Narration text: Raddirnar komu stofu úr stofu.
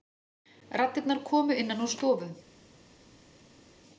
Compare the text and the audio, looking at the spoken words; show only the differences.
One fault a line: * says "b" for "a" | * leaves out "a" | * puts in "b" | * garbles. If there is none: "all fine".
* says "innan" for "stofu"